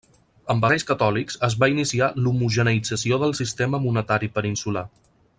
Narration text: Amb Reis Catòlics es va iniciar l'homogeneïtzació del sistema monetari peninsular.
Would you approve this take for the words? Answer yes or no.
yes